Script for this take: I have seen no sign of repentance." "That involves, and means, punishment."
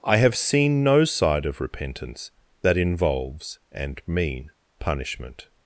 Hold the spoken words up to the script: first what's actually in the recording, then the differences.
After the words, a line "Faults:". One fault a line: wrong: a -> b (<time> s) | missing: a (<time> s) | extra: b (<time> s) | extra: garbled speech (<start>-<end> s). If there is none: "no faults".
I have seen no side of repentance." "That involves, and mean, punishment."
Faults:
wrong: sign -> side (1.1 s)
wrong: means -> mean (4.1 s)